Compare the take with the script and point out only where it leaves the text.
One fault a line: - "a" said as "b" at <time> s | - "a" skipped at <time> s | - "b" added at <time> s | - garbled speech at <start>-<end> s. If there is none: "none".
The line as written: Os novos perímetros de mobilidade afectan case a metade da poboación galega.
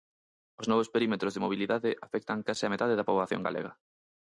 none